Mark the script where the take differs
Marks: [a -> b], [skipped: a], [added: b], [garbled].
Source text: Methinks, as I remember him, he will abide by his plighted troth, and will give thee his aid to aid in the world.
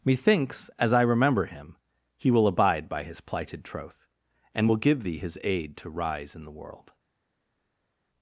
Methinks, as I remember him, he will abide by his plighted troth, and will give thee his aid to [aid -> rise] in the world.